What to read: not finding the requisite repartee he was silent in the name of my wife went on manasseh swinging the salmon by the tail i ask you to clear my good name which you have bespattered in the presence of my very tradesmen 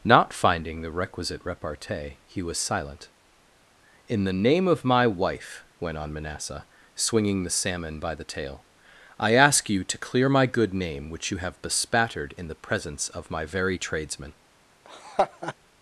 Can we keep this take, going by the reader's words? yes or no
yes